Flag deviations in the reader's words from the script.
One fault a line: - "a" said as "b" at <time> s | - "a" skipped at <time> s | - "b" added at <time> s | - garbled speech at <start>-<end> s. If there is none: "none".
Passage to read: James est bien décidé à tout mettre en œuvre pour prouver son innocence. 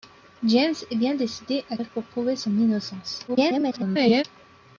- "tout mettre en" skipped at 1.8 s
- garbled speech at 3.3-4.2 s